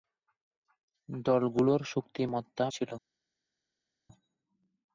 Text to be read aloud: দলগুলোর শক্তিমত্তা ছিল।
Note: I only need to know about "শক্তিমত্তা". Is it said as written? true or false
true